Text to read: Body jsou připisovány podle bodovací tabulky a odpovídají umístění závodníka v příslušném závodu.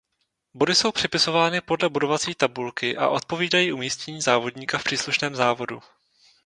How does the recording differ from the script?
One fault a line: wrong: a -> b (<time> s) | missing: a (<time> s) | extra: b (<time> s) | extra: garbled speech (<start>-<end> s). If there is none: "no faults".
no faults